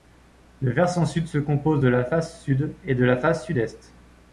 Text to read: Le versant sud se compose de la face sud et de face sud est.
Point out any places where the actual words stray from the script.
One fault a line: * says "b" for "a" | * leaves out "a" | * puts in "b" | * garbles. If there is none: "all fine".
* puts in "la"